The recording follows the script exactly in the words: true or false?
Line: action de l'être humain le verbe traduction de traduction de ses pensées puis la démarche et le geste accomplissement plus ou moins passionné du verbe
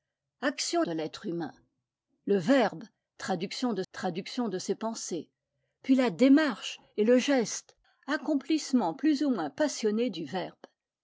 true